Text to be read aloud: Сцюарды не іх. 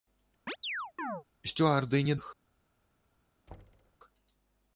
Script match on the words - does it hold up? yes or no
yes